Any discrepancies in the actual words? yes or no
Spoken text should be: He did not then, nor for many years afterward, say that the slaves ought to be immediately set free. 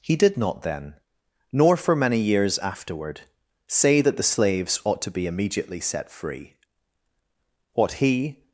yes